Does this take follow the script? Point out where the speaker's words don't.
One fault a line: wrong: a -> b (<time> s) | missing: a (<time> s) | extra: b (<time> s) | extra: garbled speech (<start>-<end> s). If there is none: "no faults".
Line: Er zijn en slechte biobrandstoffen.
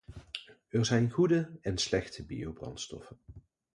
extra: goede (1.1 s)